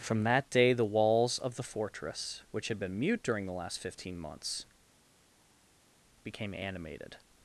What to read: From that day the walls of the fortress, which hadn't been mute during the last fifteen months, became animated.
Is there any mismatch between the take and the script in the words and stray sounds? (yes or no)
yes